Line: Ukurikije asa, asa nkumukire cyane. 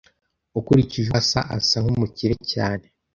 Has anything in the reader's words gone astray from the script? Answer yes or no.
no